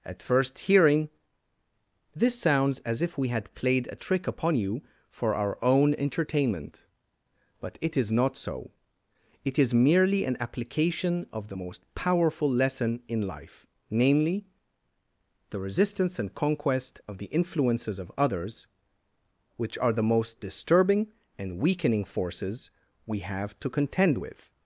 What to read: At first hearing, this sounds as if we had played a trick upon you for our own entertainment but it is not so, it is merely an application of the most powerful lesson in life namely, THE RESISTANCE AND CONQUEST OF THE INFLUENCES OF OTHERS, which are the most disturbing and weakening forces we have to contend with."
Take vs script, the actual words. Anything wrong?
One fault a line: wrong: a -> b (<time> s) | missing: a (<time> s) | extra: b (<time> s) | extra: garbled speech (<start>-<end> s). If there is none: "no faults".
no faults